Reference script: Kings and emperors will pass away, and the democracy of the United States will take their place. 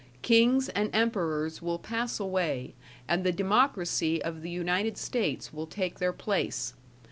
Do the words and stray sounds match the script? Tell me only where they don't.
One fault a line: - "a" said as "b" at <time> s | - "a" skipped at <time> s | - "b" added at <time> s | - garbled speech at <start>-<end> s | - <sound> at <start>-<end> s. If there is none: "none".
none